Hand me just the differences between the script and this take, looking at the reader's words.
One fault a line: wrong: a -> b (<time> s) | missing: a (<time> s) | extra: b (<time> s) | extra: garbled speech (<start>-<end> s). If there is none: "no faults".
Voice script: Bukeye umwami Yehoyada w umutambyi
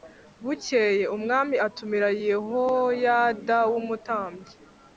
extra: atumira (1.7 s)